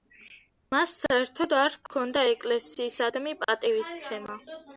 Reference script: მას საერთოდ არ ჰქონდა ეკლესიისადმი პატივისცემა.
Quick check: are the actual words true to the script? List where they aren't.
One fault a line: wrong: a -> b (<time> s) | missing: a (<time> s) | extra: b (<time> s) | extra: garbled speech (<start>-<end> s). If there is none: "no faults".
no faults